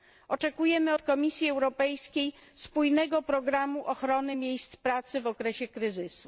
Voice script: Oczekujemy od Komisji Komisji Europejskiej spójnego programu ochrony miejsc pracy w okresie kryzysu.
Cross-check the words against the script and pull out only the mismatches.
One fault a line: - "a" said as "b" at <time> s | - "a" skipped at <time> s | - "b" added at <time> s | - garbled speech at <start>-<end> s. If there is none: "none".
- "Komisji" skipped at 1.5 s